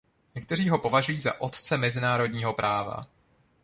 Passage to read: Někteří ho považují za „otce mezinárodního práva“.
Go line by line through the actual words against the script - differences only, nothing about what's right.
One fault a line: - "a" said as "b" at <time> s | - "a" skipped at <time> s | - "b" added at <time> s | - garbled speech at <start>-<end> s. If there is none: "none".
none